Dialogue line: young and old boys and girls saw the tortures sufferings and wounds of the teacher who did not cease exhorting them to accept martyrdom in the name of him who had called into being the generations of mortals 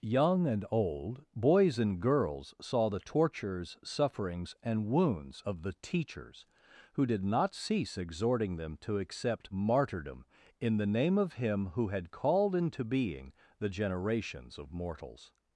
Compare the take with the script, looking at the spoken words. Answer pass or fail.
fail